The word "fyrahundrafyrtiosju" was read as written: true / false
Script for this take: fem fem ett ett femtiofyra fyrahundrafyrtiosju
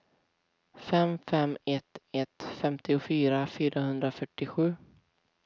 true